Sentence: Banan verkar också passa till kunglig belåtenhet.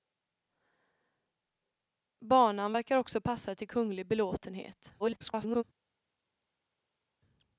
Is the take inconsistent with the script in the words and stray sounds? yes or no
yes